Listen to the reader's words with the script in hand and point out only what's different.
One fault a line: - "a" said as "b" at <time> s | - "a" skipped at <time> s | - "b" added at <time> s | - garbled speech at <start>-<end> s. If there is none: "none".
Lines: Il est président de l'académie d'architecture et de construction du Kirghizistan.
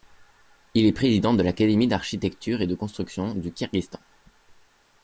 none